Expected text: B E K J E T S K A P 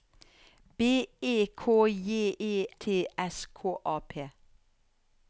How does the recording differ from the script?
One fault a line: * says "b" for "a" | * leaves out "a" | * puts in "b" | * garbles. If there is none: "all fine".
all fine